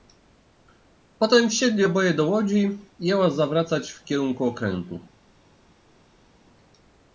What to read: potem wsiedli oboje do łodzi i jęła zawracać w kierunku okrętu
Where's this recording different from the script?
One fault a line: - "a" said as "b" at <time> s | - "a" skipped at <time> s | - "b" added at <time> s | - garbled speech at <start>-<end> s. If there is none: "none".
none